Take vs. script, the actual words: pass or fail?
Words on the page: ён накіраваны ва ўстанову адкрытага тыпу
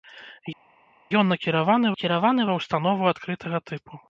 fail